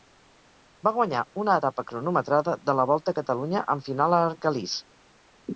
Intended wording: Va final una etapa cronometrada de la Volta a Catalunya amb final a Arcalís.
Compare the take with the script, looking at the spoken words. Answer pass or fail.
fail